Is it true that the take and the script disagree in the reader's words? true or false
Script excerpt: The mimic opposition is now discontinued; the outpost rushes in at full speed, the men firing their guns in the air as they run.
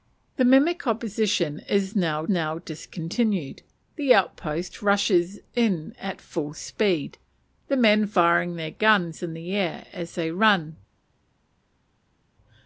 true